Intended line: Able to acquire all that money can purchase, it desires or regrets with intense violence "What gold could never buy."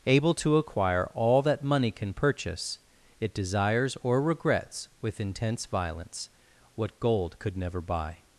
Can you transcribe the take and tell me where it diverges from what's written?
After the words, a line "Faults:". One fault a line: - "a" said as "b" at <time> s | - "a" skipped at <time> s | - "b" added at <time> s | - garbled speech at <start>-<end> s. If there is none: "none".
Able to acquire all that money can purchase, it desires or regrets with intense violence "What gold could never buy."
Faults:
none